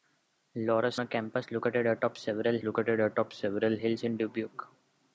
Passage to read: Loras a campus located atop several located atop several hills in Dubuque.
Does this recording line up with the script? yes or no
yes